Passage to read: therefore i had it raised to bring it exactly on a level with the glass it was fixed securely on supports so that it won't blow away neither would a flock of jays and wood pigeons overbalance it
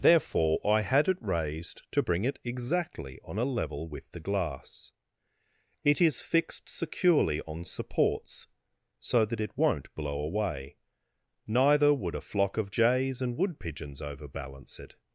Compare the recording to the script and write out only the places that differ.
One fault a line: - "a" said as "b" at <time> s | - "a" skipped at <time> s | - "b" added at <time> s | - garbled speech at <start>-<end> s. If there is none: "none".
- "was" said as "is" at 6.0 s